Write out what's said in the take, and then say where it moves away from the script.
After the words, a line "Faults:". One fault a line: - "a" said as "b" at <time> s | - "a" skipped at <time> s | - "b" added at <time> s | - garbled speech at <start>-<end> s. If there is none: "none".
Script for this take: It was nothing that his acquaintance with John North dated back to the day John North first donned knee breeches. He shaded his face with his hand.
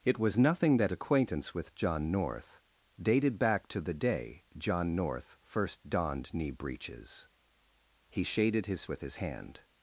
It was nothing that acquaintance with John North dated back to the day John North first donned knee breeches. He shaded his with his hand.
Faults:
- "his" skipped at 0.9 s
- "face" skipped at 8.9 s